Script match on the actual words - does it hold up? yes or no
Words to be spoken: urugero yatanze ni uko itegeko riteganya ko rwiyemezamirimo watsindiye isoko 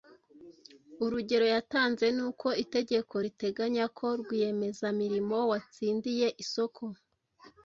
yes